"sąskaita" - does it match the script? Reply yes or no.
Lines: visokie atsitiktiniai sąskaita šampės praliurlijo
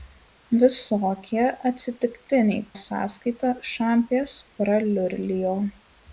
yes